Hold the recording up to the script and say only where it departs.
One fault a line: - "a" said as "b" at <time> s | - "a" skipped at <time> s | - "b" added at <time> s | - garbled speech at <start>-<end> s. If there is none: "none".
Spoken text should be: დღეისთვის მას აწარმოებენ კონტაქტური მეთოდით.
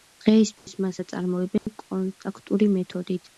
none